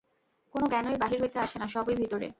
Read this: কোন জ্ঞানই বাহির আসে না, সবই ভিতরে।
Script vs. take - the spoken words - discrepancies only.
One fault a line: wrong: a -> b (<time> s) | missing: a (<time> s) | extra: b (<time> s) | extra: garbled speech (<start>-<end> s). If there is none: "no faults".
extra: হইতে (1.2 s)